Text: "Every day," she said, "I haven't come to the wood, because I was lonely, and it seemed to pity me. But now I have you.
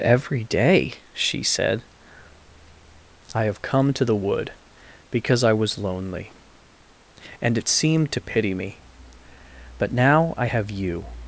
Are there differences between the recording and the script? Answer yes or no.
yes